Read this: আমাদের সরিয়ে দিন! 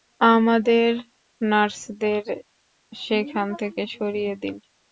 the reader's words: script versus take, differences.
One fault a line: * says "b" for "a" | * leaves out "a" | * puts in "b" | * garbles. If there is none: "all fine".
* puts in "নার্সদের সেখান থেকে"